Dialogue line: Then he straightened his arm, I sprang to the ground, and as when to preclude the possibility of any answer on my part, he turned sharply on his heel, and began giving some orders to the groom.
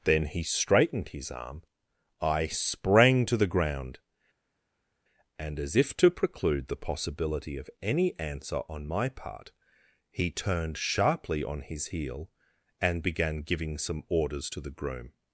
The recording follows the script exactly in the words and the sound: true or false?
false